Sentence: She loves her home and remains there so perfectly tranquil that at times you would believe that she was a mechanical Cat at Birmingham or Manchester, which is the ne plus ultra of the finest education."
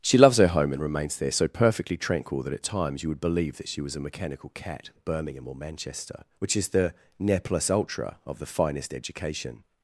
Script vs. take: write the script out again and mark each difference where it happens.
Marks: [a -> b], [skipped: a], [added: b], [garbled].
She loves her home and remains there so perfectly tranquil that at times you would believe that she was a mechanical Cat at Birmingham or Manchester, which is the ne plus ultra of the finest education."